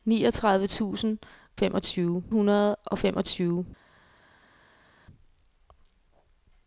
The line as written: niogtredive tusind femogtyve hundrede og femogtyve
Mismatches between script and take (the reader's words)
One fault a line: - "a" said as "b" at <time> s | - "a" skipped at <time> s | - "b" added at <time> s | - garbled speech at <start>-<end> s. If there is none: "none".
none